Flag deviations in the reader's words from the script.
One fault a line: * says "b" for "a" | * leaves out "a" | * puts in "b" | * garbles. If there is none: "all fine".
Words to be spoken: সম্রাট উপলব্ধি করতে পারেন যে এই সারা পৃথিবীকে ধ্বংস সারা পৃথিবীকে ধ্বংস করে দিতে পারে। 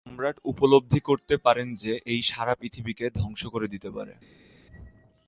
* leaves out "সারা পৃথিবীকে ধ্বংস"